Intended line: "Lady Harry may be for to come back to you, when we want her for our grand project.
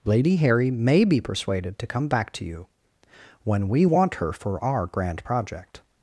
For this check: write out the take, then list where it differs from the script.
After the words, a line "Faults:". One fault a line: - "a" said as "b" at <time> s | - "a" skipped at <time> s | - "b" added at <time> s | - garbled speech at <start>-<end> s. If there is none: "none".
"Lady Harry may be persuaded to come back to you, when we want her for our grand project.
Faults:
- "for" said as "persuaded" at 1.2 s